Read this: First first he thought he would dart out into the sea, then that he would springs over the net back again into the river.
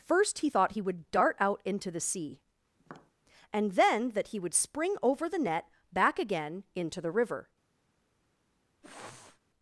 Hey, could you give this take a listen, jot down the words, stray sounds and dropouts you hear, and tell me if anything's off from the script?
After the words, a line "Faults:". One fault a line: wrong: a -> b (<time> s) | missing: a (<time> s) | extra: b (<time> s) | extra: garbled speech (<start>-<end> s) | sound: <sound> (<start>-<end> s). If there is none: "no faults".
First he thought he would dart out into the sea, and then that he would spring over the net back again into the river.
Faults:
missing: first (0.4 s)
sound: tap (2.8-3.1 s)
extra: and (3.5 s)
wrong: springs -> spring (4.5 s)
sound: sniff (8.8-9.4 s)